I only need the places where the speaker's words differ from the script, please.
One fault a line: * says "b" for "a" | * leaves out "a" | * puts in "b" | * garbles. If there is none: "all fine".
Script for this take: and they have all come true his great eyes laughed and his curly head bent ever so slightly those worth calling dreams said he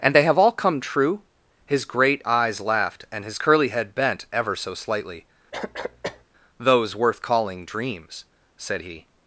all fine